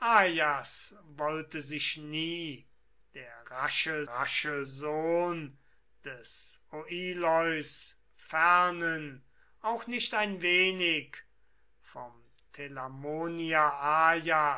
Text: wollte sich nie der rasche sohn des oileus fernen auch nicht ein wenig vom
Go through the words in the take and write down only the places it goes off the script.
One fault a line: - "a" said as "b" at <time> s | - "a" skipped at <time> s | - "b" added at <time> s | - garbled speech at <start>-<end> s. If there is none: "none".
- "rasche" added at 4.1 s